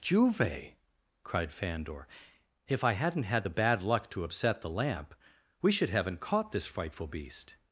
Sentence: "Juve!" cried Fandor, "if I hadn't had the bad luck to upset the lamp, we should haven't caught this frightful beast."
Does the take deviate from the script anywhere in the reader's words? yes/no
no